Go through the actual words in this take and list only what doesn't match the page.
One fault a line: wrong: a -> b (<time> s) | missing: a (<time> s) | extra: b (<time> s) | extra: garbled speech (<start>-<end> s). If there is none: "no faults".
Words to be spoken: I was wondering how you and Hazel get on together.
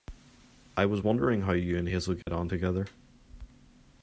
no faults